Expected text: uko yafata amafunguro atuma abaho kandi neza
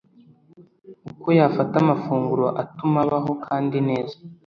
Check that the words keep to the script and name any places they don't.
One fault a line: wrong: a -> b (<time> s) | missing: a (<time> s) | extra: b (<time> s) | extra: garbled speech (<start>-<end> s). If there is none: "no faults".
no faults